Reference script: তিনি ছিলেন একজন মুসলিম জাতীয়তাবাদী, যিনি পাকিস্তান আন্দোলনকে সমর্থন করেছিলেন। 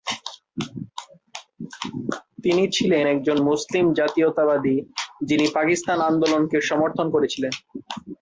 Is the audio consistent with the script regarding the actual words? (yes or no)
yes